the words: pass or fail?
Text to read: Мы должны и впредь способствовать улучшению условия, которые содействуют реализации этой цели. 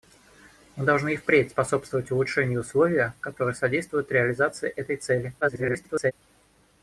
fail